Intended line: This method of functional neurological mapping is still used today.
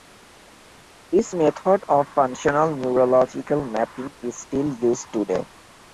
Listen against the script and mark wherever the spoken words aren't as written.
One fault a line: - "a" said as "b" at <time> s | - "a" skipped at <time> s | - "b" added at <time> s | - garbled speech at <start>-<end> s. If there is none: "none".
none